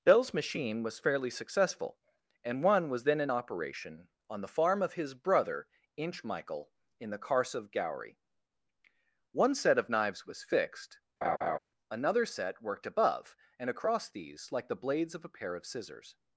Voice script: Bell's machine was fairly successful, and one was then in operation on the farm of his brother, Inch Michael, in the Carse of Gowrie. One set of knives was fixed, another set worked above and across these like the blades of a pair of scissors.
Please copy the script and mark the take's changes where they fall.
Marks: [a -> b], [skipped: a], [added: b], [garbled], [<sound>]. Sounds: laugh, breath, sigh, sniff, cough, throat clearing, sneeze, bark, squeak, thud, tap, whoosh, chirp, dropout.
Bell's machine was fairly successful, and one was then in operation on the farm of his brother, Inch Michael, in the Carse of Gowrie. One set of knives was fixed, [laugh] another set worked above and across these like the blades of a pair of scissors.